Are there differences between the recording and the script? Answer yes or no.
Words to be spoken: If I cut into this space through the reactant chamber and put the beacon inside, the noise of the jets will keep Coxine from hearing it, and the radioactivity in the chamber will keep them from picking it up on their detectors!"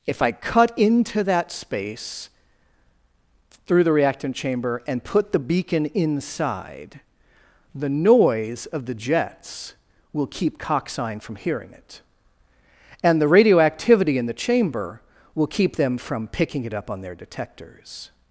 yes